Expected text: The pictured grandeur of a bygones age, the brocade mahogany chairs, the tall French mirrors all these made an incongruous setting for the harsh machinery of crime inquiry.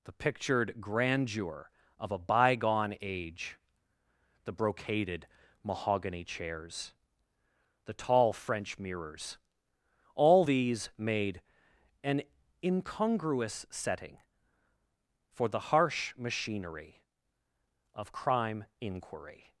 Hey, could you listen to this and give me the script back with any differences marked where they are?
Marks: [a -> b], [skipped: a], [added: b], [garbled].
The pictured grandeur of a [bygones -> bygone] age, the [brocade -> brocaded] mahogany chairs, the tall French mirrors all these made an incongruous setting for the harsh machinery of crime inquiry.